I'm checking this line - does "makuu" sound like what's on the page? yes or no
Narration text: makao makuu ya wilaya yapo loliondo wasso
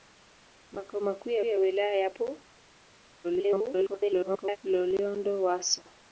yes